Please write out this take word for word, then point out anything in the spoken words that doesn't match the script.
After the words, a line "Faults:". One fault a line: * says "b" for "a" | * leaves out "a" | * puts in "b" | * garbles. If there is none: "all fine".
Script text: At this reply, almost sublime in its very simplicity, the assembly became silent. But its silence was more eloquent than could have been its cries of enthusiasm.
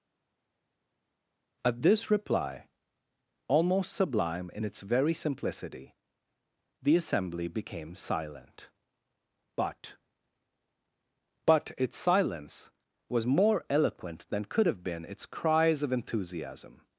At this reply, almost sublime in its very simplicity, the assembly became silent. But But its silence was more eloquent than could have been its cries of enthusiasm.
Faults:
* puts in "But"